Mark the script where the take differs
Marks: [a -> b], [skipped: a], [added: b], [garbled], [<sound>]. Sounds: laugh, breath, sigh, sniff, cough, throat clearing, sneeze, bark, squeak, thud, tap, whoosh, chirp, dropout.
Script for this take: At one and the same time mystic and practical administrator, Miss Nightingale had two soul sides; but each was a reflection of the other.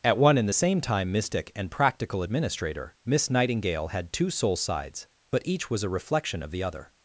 At one and the same time mystic and practical administrator, Miss Nightingale had two soul sides; but each was a reflection of the other.